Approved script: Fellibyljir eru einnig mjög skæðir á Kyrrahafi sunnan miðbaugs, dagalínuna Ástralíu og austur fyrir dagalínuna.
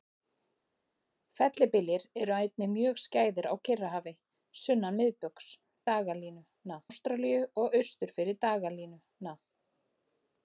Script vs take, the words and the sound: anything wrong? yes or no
no